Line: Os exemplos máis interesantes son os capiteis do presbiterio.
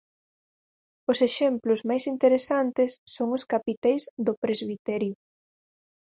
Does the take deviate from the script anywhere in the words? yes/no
no